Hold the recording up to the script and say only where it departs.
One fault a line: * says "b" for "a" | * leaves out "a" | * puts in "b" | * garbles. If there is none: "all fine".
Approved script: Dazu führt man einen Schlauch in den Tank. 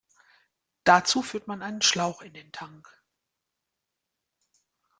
all fine